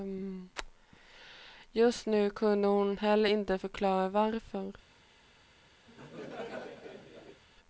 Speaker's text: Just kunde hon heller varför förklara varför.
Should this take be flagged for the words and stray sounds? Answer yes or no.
yes